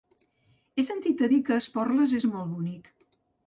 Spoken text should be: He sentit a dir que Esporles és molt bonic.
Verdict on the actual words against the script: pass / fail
pass